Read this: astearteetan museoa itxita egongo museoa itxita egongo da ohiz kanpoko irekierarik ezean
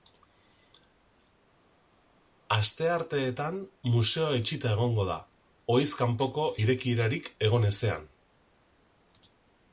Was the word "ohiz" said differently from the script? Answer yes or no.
no